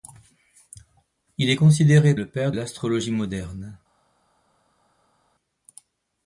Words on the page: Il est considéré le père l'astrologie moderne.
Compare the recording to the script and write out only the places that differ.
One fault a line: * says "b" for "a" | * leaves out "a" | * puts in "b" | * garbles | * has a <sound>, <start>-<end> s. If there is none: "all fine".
all fine